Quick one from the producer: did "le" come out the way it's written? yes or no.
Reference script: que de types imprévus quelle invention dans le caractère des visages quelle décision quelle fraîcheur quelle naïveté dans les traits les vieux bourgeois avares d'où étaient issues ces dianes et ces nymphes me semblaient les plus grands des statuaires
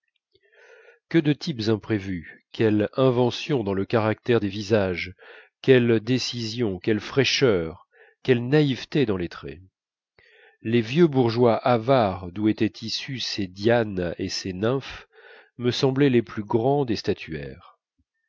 yes